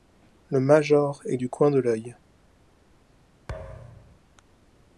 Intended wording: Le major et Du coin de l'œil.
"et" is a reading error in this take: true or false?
false